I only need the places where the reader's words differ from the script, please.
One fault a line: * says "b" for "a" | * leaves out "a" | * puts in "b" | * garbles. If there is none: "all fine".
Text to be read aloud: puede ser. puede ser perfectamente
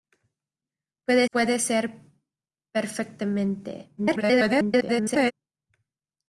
* leaves out "ser"
* garbles